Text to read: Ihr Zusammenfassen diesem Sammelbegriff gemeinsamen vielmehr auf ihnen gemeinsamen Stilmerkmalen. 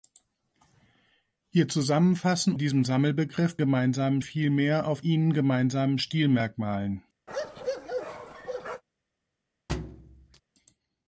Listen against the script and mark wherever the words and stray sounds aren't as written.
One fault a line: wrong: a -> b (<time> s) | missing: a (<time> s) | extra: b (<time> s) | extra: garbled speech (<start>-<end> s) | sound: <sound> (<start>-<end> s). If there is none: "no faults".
sound: bark (7.3-8.8 s)
sound: thud (9.7-10.4 s)